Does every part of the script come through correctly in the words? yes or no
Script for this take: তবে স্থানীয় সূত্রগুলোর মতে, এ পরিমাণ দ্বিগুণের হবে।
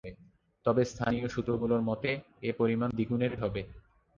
yes